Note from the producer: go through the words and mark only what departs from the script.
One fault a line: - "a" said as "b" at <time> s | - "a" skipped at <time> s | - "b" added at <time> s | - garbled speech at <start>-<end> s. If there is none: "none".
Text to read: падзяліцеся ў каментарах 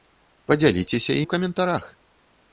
none